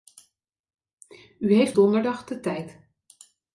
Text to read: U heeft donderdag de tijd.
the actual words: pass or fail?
pass